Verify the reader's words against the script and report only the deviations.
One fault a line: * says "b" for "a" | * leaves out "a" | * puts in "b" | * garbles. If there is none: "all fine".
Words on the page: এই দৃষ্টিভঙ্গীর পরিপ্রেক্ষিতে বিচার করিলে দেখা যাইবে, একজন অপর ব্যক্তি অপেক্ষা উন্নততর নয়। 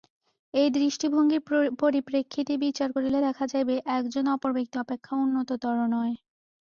all fine